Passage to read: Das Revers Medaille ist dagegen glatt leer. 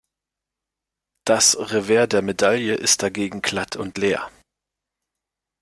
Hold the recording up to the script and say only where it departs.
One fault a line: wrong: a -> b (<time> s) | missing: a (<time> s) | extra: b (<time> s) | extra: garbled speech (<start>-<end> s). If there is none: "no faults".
extra: der (2.1 s)
extra: und (3.8 s)